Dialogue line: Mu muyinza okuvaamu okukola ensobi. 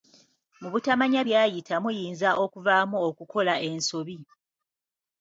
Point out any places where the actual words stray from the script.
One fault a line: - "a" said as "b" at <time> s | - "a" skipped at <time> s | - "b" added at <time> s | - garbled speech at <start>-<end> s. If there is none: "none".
- "butamanya byayita" added at 0.7 s